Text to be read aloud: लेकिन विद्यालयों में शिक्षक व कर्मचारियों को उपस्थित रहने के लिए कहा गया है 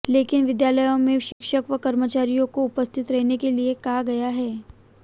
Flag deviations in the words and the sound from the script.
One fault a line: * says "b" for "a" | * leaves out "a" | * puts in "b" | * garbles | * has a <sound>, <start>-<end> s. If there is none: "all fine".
* has a dropout, 1.3-1.4 s